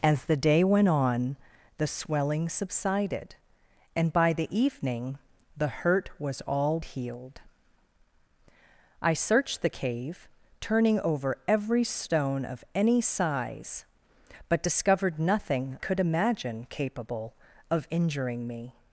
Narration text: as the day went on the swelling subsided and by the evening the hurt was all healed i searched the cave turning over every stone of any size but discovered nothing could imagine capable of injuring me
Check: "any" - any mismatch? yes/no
no